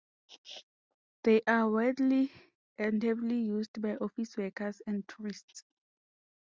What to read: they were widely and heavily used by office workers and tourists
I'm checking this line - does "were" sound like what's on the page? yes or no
no